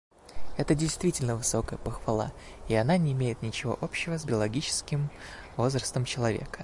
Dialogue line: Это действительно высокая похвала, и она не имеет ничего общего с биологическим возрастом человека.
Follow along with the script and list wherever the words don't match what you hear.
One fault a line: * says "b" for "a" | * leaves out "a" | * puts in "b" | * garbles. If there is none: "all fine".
all fine